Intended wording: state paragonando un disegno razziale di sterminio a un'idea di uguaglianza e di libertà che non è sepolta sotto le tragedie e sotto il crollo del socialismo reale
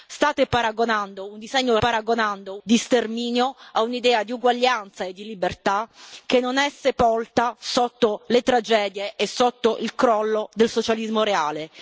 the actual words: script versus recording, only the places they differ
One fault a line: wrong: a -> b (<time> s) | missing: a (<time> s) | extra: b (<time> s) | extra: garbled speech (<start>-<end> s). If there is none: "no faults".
wrong: razziale -> paragonando (1.8 s)